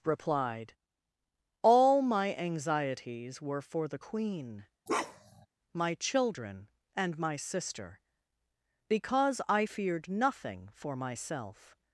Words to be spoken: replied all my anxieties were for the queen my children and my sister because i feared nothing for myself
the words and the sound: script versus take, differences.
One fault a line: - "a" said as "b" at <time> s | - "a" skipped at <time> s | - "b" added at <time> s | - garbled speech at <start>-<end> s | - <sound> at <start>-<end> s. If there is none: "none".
- bark at 4.9-5.5 s